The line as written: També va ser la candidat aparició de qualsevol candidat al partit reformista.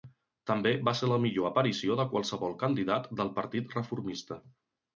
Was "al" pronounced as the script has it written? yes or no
no